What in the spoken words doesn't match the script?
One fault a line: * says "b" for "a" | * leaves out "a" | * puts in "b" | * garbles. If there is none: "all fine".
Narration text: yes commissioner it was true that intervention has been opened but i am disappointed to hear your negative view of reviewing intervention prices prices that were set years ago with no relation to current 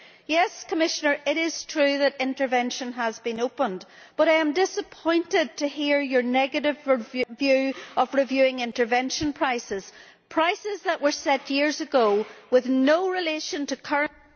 * says "is" for "was"